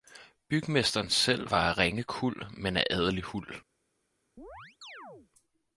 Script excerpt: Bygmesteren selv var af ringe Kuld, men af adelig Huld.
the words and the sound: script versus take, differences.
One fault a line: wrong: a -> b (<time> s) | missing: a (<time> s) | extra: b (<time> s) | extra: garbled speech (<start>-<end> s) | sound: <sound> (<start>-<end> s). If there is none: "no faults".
sound: chirp (4.4-5.3 s)